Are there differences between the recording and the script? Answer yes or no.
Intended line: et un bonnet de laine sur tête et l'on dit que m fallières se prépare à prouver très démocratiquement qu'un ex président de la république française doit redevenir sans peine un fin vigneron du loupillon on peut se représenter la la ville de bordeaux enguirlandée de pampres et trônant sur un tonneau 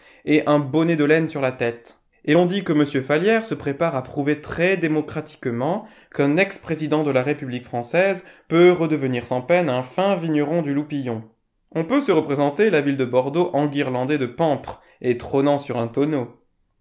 yes